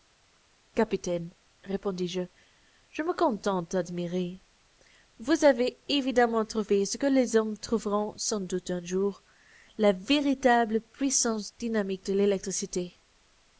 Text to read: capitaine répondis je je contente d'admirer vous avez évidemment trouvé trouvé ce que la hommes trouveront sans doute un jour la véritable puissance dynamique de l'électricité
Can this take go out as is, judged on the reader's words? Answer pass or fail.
fail